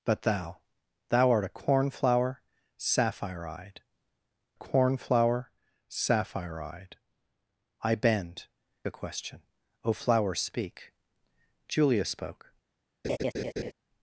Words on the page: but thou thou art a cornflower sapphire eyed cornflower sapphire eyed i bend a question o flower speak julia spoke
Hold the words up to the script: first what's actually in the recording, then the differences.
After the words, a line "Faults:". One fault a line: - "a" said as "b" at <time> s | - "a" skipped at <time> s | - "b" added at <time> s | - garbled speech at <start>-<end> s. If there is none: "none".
but thou thou art a cornflower sapphire eyed cornflower sapphire eyed i bend a question o flower speak julia spoke
Faults:
none